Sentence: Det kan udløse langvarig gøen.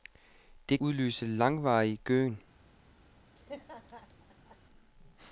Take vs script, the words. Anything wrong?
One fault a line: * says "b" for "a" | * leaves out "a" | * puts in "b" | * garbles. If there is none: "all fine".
* leaves out "kan"